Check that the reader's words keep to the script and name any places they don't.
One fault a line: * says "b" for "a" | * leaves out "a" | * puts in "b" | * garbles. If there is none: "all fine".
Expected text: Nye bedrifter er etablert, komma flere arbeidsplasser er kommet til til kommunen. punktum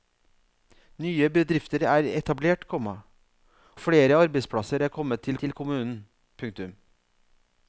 all fine